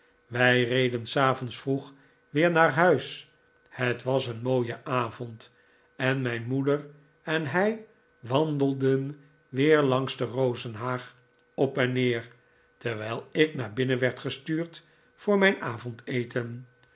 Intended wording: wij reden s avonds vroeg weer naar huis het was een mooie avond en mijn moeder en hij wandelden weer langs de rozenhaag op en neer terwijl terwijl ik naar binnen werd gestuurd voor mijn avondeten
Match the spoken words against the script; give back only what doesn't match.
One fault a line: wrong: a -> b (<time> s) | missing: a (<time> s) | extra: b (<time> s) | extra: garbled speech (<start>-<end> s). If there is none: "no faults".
missing: terwijl (13.3 s)